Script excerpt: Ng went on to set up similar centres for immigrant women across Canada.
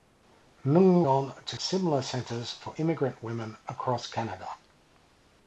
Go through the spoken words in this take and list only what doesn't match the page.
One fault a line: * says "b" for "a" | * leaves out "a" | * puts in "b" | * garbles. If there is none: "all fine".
* leaves out "went"
* leaves out "set up"